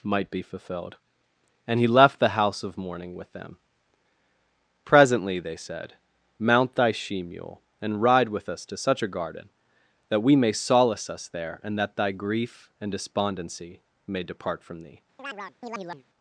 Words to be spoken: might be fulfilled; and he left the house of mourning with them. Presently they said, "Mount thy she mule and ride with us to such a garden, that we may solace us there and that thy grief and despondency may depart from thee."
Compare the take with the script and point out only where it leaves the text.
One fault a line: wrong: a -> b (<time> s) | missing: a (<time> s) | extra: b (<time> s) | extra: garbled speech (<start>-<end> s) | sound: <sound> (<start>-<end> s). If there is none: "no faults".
sound: chirp (15.2-16.0 s)